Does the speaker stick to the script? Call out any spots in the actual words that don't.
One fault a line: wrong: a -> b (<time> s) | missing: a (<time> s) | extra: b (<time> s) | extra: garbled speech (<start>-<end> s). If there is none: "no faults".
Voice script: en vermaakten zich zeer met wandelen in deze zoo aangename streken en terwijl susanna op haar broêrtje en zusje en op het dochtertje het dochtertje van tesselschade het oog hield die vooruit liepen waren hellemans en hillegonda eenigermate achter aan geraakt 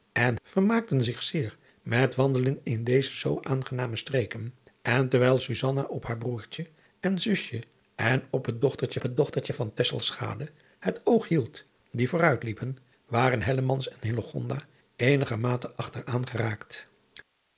no faults